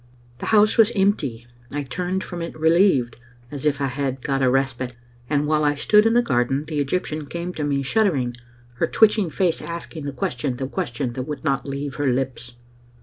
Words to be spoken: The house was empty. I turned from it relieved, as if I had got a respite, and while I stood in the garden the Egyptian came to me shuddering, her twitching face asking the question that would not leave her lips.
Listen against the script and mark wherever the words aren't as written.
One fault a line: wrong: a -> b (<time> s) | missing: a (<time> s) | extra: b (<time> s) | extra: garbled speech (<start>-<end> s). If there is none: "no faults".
extra: question that (10.7 s)